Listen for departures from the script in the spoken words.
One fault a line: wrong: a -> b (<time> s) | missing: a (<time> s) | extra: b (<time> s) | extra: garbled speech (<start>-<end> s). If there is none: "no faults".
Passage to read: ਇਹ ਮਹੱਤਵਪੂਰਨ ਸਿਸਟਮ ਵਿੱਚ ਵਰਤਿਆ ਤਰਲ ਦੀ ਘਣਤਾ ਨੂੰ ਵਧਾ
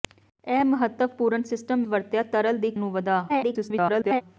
missing: ਵਿੱਚ (1.8 s)
missing: ਘਣਤਾ (2.7 s)
extra: garbled speech (3.3-4.2 s)